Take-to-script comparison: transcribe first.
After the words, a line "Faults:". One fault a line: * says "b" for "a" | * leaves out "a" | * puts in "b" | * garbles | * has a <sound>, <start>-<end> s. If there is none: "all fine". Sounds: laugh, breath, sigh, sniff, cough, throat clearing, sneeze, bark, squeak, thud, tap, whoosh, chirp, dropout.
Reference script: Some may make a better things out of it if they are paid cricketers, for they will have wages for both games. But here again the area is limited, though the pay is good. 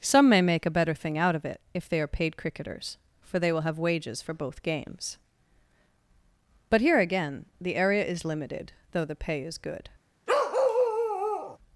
Some may make a better thing out of it if they are paid cricketers, for they will have wages for both games. But here again the area is limited, though the pay is good.
Faults:
* says "thing" for "things"
* has a bark, 10.3-11.6 s